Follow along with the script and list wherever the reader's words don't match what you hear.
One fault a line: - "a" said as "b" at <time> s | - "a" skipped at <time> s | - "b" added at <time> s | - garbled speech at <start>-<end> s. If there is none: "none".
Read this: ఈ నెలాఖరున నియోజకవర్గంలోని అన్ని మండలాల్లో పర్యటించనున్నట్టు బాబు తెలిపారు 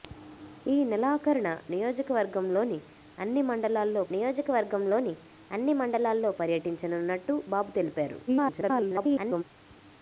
- "నియోజకవర్గంలోని అన్ని మండలాల్లో" added at 4.1 s
- garbled speech at 8.3-9.4 s